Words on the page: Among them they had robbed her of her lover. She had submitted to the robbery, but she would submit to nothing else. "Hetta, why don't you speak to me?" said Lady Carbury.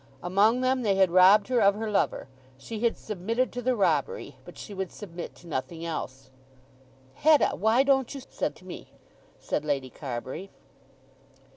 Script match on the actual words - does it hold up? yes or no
no